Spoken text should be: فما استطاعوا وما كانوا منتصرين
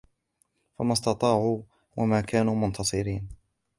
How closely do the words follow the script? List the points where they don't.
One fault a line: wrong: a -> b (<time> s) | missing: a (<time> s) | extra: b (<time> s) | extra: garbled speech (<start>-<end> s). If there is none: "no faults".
no faults